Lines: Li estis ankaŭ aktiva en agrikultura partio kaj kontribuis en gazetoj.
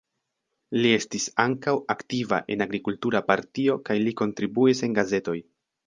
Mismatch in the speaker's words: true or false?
true